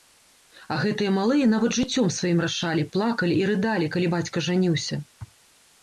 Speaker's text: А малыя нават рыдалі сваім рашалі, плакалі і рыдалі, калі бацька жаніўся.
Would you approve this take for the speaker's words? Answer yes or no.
no